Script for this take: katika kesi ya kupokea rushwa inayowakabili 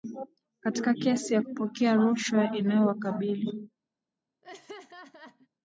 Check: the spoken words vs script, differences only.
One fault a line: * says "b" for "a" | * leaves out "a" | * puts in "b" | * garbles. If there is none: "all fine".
all fine